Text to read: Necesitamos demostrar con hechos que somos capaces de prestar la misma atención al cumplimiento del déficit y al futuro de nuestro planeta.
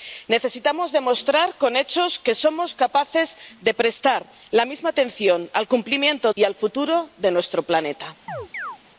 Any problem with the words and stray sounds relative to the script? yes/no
yes